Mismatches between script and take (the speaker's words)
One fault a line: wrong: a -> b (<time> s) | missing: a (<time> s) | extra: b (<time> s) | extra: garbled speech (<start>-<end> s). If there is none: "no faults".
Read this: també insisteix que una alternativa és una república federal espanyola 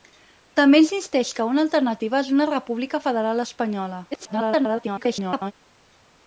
extra: garbled speech (4.1-5.5 s)